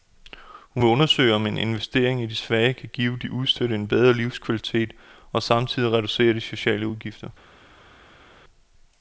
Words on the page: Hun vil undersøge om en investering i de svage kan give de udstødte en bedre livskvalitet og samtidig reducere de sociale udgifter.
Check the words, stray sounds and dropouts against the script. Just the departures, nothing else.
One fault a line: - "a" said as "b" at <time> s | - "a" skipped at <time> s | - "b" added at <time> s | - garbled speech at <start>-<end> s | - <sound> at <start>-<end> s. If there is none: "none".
none